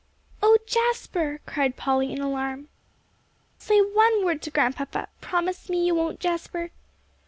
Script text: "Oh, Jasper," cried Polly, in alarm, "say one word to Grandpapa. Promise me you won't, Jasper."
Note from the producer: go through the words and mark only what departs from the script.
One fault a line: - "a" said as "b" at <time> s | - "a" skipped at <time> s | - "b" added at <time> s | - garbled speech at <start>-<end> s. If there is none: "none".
none